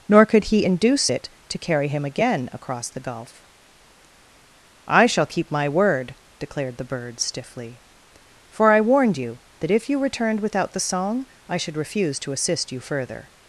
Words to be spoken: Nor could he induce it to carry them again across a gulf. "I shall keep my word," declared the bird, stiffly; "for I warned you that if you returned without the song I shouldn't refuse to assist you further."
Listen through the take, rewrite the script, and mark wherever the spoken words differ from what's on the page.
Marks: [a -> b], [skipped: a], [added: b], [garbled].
Nor could he induce it to carry [them -> him] again across [a -> the] gulf. "I shall keep my word," declared the bird, stiffly; "for I warned you that if you returned without the song I [shouldn't -> should] refuse to assist you further."